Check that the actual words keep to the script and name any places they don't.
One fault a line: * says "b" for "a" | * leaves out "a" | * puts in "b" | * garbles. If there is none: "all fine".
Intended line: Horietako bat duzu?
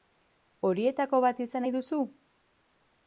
* puts in "izan nahi"